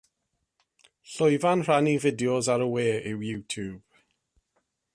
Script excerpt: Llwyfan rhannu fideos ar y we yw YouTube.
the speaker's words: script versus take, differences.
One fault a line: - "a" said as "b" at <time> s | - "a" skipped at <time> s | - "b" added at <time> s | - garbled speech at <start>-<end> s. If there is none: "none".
none